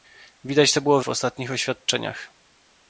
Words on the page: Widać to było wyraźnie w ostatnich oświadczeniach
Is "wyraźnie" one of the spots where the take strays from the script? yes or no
yes